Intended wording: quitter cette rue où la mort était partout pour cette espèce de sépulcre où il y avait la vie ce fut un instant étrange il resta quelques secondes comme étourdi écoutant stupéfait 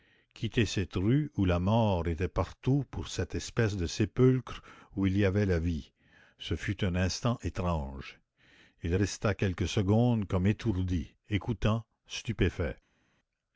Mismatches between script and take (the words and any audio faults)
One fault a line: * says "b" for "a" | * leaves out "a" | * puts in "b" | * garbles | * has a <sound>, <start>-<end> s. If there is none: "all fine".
all fine